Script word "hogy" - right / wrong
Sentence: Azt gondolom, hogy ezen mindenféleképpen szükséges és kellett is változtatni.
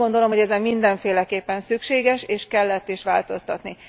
right